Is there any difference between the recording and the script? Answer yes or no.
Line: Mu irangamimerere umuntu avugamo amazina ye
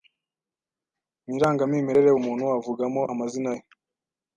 no